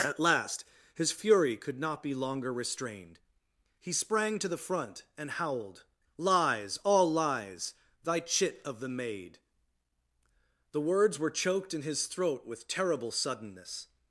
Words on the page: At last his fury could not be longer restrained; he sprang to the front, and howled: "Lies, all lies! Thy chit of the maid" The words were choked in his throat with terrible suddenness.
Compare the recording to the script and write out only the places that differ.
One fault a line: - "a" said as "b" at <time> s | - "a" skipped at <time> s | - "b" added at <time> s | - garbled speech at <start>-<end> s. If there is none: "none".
none